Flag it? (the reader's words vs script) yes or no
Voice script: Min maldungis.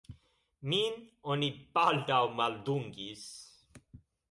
yes